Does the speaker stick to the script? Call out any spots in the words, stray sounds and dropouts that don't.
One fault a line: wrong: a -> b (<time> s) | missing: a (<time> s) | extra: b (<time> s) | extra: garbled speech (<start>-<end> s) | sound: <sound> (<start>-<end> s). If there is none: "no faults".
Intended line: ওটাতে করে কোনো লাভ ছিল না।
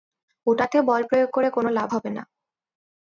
extra: বল প্রয়োগ (0.8 s)
wrong: ছিল -> হবে (1.9 s)